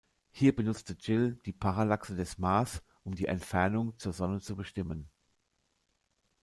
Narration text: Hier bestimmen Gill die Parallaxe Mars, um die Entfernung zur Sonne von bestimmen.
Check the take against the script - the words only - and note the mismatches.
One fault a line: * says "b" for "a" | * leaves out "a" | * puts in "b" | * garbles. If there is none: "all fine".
* says "benutzte" for "bestimmen"
* puts in "des"
* says "zu" for "von"